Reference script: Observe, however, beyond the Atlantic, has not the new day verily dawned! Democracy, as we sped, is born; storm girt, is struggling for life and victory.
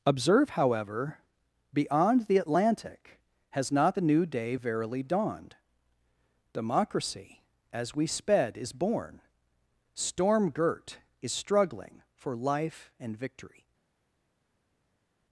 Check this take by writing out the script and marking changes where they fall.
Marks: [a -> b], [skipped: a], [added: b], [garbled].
Observe, however, beyond the Atlantic, has not the new day verily dawned! Democracy, as we sped, is born; storm girt, is struggling for life and victory.